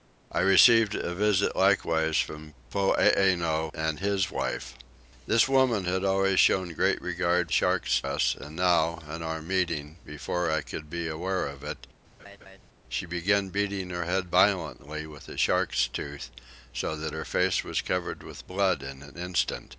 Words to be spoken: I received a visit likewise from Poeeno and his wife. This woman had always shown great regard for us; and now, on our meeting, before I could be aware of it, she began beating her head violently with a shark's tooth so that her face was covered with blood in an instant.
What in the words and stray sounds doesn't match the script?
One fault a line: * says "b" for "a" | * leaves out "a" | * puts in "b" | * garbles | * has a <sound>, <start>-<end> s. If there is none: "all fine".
* says "shark's" for "for"
* has a laugh, 12.2-12.6 s